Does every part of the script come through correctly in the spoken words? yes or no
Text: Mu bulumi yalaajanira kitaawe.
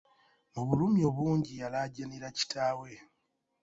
no